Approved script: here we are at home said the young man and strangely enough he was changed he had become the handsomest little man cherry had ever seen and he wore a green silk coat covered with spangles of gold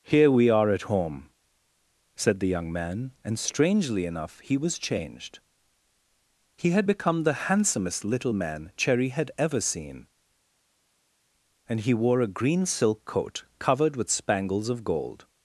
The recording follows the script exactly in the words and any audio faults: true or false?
true